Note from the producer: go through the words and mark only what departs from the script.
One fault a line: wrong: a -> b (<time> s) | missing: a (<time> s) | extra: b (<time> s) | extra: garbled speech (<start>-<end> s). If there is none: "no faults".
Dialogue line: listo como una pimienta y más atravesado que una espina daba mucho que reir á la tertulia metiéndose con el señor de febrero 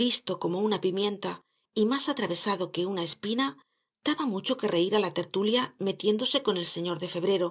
no faults